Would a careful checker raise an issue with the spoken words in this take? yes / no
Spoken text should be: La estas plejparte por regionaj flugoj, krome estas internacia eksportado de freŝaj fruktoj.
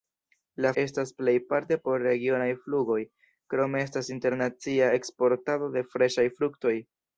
no